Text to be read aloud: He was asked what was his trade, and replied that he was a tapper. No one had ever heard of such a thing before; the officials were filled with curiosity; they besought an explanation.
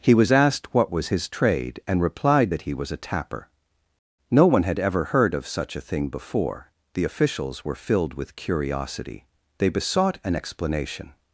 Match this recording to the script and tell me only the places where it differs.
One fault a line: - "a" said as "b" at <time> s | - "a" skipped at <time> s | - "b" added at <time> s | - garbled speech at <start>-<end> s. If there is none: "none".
none